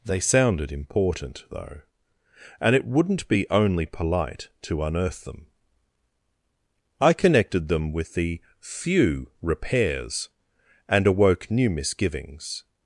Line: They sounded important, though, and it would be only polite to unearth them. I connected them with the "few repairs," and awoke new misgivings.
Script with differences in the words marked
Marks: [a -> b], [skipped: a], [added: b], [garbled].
They sounded important, though, and it [would -> wouldn't] be only polite to unearth them. I connected them with the "few repairs," and awoke new misgivings.